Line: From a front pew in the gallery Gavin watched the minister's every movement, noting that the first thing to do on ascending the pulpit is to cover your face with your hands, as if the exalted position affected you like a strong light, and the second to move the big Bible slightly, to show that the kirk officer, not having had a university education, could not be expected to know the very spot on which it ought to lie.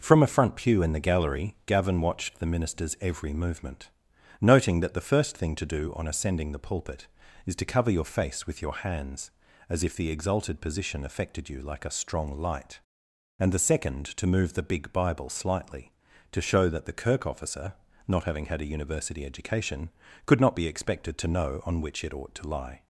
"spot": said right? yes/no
no